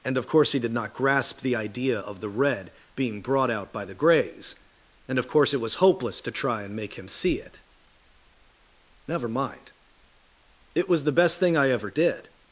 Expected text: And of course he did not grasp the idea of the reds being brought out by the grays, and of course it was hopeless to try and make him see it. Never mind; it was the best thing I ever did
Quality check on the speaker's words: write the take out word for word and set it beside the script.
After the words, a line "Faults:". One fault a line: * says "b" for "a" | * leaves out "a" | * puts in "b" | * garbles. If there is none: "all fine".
And of course he did not grasp the idea of the red being brought out by the grays, and of course it was hopeless to try and make him see it. Never mind; it was the best thing I ever did
Faults:
* says "red" for "reds"